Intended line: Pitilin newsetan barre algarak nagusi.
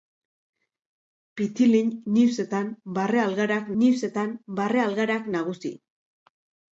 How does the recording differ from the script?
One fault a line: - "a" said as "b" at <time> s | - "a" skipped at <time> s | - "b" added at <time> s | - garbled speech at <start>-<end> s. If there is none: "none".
- "newsetan barre algarak" added at 3.8 s